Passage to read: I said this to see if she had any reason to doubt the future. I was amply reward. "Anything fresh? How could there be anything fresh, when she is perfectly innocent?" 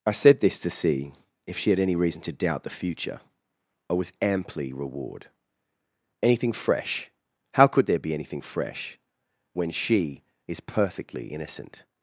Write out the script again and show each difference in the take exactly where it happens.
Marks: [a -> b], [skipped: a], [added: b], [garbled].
I said this to see if she had any reason to doubt the future. I was amply reward. "Anything fresh? How could there be anything fresh, when she is perfectly innocent?"